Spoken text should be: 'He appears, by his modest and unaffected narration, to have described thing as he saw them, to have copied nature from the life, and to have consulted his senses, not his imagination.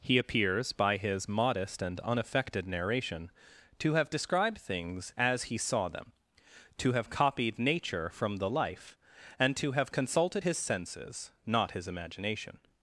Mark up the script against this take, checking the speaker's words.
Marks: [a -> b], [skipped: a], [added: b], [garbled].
'He appears, by his modest and unaffected narration, to have described [thing -> things] as he saw them, to have copied nature from the life, and to have consulted his senses, not his imagination.